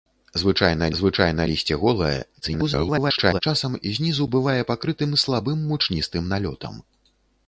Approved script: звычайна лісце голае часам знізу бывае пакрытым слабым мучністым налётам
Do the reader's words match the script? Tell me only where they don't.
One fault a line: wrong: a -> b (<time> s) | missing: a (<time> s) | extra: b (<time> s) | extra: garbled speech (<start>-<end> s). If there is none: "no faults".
extra: звычайна (1.0 s)
extra: garbled speech (2.4-3.4 s)